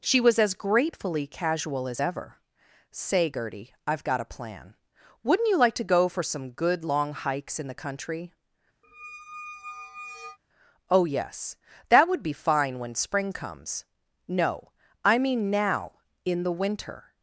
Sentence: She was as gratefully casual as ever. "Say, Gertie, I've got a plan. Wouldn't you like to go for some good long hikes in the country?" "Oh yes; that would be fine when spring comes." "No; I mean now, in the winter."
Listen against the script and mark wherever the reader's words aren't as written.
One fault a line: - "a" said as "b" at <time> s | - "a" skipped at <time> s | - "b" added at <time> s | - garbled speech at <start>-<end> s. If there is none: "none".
none